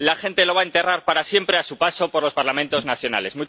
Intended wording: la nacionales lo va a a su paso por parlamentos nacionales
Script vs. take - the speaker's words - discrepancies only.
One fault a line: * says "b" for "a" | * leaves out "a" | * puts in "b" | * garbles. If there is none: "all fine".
* says "gente" for "nacionales"
* puts in "enterrar para siempre"
* puts in "los"